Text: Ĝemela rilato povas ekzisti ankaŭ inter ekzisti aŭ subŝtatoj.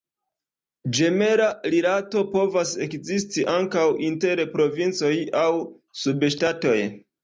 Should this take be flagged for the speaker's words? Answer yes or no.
yes